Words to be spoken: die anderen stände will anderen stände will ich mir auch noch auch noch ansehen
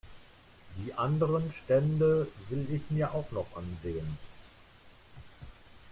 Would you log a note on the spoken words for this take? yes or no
yes